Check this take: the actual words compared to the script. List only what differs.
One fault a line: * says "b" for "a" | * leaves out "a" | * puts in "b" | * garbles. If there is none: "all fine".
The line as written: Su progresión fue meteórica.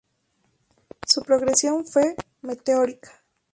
all fine